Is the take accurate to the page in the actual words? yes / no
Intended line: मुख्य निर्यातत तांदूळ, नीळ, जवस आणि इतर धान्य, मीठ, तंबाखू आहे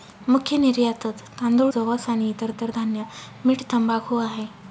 no